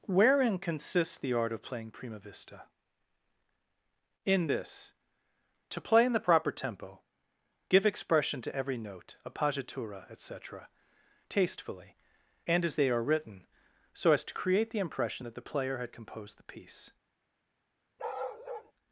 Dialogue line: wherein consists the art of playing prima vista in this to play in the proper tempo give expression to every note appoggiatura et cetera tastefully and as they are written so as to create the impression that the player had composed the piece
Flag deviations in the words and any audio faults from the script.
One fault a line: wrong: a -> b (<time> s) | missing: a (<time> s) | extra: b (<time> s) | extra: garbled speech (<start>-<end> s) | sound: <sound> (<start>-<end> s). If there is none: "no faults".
sound: bark (18.0-18.7 s)